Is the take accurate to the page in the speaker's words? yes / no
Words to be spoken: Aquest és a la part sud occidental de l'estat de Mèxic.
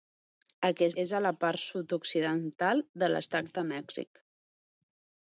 yes